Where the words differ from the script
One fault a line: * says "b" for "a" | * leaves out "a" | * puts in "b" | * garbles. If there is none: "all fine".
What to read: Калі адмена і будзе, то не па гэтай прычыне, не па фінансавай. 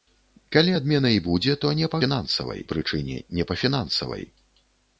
* says "фінансавай" for "гэтай"